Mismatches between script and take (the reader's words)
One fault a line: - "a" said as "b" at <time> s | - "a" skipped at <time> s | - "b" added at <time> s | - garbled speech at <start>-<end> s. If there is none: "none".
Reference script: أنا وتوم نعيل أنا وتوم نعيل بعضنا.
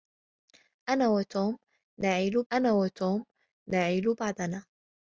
none